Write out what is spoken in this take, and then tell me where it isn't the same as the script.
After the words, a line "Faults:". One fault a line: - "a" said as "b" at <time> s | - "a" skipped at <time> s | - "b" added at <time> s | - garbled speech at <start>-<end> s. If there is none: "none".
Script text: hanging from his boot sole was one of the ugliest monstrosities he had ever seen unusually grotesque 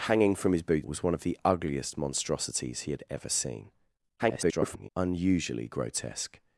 hanging from his boot was one of the ugliest monstrosities he had ever seen [garbled] unusually grotesque
Faults:
- "sole" skipped at 0.9 s
- garbled speech at 4.2-4.9 s